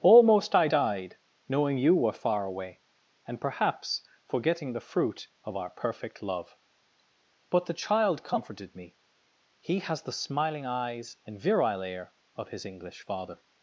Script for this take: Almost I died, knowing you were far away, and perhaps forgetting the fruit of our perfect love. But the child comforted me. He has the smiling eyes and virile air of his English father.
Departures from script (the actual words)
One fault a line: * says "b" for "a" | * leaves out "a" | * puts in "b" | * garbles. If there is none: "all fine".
all fine